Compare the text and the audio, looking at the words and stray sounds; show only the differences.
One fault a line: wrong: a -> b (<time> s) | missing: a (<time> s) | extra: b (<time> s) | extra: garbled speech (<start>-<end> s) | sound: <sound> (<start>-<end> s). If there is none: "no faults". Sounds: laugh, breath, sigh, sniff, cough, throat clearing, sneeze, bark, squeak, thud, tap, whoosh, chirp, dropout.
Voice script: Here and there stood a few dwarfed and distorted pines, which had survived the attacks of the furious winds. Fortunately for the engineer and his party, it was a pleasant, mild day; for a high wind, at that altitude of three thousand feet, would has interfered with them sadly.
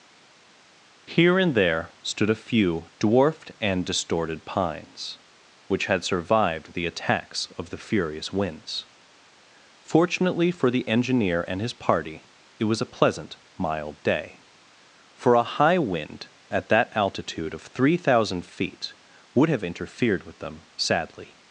wrong: has -> have (19.5 s)